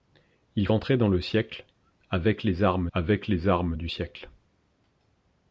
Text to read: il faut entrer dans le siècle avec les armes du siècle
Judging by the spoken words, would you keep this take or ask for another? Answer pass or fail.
fail